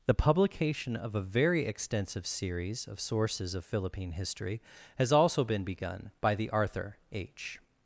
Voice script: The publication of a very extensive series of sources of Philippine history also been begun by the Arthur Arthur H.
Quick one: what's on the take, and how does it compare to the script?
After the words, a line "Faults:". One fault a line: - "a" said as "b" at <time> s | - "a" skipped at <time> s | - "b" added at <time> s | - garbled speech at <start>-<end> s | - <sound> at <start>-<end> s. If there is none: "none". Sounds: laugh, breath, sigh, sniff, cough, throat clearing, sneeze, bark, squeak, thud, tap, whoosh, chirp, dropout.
The publication of a very extensive series of sources of Philippine history has also been begun by the Arthur H.
Faults:
- "has" added at 5.0 s
- "Arthur" skipped at 7.0 s